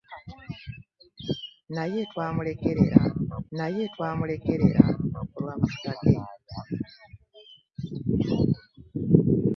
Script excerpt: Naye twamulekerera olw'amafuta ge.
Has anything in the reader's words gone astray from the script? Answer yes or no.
yes